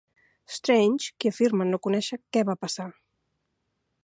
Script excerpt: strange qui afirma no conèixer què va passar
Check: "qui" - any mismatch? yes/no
no